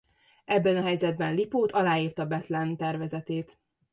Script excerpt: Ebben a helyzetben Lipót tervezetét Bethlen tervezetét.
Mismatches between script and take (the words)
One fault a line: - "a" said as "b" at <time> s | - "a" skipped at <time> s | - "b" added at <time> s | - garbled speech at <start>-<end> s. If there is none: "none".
- "tervezetét" said as "aláírta" at 1.7 s